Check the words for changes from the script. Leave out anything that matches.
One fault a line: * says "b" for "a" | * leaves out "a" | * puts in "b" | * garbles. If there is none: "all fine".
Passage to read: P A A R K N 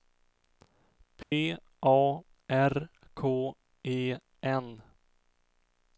* leaves out "A"
* puts in "E"